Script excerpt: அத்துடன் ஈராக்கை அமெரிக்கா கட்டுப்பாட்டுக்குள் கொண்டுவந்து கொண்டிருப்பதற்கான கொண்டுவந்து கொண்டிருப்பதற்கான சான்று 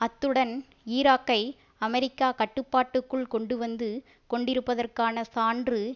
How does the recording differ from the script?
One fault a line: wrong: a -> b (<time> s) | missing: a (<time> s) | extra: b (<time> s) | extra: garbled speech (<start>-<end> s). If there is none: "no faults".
missing: கொண்டுவந்து கொண்டிருப்பதற்கான (5.2 s)